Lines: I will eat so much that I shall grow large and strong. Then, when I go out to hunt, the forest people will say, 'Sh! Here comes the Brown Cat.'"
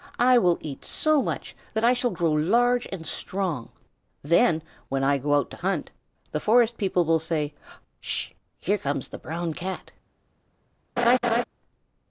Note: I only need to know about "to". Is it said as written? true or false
true